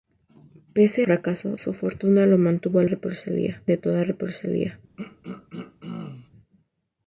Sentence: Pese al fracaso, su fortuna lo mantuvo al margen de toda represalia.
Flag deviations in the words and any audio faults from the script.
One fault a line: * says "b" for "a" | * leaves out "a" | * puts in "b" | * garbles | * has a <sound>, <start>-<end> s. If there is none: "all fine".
* leaves out "al"
* says "represalia" for "margen"
* has a throat clearing, 5.0-6.3 s